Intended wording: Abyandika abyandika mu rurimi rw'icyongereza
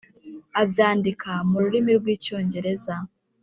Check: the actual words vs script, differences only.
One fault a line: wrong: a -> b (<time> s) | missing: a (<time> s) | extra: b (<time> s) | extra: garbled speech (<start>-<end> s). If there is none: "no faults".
missing: abyandika (1.3 s)